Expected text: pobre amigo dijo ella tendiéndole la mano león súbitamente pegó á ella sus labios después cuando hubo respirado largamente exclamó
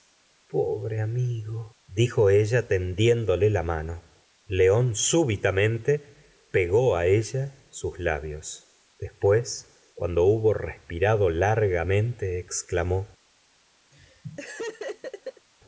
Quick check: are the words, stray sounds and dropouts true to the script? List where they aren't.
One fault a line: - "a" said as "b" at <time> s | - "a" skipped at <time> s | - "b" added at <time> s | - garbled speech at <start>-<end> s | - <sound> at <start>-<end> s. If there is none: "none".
- laugh at 13.9-15.5 s